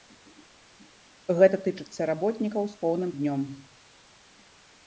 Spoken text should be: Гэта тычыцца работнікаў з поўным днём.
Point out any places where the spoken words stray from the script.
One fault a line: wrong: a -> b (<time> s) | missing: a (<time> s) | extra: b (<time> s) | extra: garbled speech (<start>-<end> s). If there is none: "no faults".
no faults